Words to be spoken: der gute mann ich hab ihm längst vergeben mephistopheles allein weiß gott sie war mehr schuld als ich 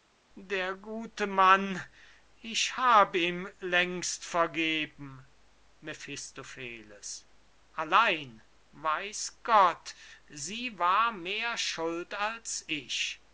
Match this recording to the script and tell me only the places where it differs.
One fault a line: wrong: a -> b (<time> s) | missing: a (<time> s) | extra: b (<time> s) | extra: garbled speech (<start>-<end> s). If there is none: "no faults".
no faults